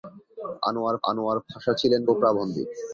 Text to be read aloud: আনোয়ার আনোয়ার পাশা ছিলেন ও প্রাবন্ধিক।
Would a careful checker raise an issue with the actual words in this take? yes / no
no